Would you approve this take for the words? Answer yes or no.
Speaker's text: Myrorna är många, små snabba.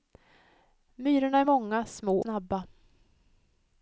yes